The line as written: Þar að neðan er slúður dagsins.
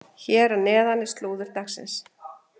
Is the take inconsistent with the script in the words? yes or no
yes